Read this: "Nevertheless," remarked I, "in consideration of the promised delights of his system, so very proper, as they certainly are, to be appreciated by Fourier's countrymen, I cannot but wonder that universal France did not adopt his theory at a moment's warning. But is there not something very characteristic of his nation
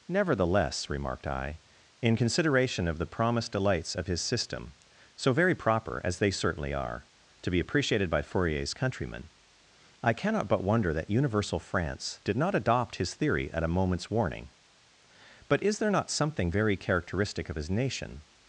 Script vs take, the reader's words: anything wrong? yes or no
no